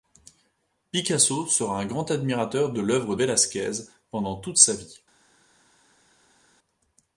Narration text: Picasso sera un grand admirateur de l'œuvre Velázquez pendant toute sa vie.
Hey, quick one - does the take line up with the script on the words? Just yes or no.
yes